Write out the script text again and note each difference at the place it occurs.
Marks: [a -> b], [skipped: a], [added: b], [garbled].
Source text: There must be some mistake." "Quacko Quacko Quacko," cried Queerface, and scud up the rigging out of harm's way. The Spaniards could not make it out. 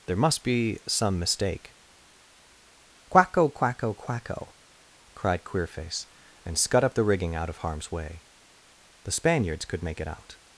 There must be some mistake." "Quacko Quacko Quacko," cried Queerface, and scud up the rigging out of harm's way. The Spaniards could [skipped: not] make it out.